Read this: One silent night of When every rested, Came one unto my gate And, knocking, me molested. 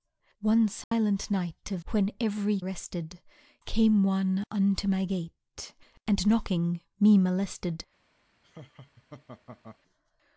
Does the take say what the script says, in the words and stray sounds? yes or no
no